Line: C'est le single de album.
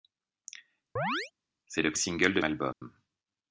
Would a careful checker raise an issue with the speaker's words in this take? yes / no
no